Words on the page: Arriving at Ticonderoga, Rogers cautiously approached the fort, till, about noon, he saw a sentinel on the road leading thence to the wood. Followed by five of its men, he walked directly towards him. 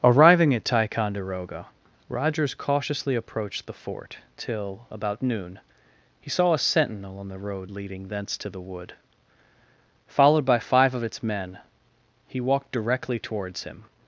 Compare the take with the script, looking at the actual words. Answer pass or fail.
pass